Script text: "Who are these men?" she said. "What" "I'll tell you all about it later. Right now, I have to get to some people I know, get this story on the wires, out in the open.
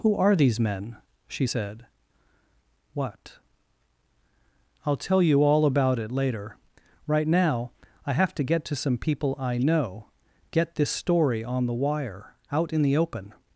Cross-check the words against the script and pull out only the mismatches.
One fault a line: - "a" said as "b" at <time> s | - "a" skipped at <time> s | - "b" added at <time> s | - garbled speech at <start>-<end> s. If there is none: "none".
- "wires" said as "wire" at 11.7 s